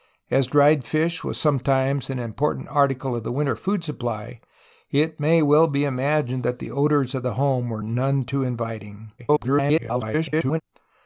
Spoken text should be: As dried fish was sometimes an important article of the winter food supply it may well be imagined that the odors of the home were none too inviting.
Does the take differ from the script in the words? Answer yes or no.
yes